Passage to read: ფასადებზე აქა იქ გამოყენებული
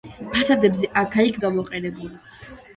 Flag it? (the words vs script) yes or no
no